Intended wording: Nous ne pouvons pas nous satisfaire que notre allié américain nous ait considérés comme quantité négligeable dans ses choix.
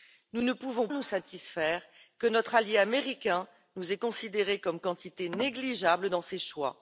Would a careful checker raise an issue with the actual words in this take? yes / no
yes